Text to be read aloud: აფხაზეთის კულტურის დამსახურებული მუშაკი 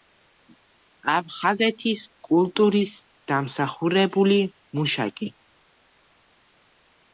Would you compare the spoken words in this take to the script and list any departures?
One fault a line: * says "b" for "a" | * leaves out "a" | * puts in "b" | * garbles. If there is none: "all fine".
all fine